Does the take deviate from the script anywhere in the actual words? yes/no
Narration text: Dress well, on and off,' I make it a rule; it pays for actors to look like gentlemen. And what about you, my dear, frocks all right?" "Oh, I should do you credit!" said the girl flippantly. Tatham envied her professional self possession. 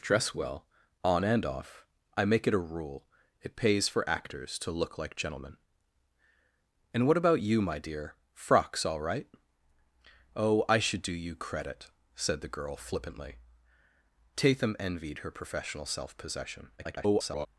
yes